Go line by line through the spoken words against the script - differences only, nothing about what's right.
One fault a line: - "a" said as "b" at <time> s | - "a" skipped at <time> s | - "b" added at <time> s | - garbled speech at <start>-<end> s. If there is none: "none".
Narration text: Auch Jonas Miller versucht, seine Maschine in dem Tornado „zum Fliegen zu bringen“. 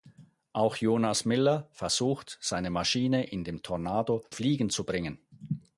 - "zum" skipped at 4.2 s